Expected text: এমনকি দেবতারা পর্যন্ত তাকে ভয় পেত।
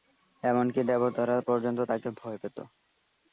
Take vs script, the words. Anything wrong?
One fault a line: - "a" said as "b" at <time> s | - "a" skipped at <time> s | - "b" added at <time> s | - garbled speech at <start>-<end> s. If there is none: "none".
none